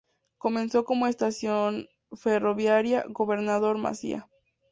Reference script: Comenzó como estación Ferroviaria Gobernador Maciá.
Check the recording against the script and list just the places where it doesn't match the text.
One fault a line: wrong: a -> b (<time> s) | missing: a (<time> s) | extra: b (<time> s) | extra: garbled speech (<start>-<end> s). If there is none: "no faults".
no faults